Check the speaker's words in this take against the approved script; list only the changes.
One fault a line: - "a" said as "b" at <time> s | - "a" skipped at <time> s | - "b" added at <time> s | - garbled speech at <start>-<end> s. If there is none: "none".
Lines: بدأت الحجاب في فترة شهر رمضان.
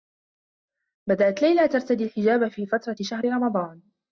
- "ليلى ترتدي" added at 1.4 s